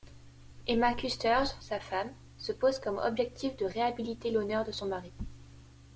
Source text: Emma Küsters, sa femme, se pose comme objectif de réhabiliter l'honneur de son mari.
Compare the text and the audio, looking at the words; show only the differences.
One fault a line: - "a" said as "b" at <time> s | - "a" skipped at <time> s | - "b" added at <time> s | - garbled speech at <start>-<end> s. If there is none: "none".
none